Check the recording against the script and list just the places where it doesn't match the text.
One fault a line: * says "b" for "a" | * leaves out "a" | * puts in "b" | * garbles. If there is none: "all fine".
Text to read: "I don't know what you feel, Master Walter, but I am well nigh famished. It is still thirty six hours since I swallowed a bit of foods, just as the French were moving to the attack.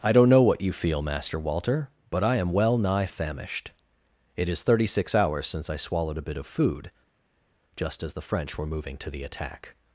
* leaves out "still"
* says "food" for "foods"